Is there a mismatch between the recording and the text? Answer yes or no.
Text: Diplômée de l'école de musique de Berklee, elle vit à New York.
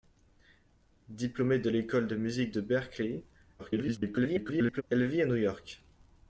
yes